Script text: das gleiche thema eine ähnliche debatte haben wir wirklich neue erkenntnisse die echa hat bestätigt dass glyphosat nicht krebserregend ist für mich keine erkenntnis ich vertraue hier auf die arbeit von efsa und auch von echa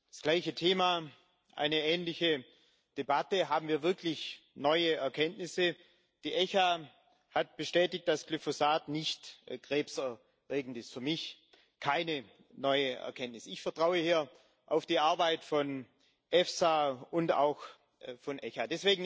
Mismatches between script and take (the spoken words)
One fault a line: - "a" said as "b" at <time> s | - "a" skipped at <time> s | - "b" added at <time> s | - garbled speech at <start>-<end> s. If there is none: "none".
- "neue" added at 12.5 s